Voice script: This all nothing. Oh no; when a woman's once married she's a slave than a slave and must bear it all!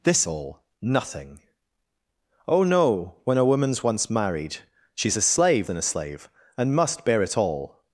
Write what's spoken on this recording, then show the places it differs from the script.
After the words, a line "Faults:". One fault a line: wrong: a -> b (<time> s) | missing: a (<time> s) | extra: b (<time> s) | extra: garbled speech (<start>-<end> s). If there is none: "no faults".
This all nothing. Oh no; when a woman's once married she's a slave than a slave and must bear it all!
Faults:
no faults